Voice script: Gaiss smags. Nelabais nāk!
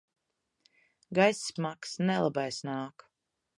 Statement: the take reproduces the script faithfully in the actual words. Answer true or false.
true